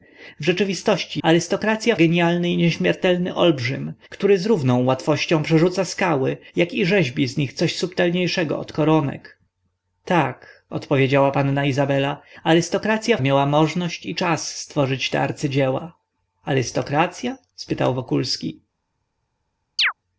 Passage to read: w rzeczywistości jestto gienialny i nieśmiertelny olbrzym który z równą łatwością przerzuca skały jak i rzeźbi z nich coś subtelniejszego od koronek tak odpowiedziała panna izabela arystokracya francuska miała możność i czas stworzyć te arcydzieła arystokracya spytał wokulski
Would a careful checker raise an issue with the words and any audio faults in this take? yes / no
yes